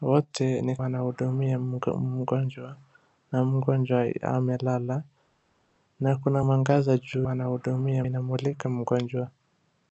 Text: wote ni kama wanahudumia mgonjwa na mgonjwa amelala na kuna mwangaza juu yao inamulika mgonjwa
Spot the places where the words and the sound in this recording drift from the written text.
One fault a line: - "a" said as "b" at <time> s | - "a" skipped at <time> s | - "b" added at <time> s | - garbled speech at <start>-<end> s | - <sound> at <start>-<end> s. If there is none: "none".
- "kama" skipped at 0.8 s
- "yao" said as "wanahudumia" at 7.2 s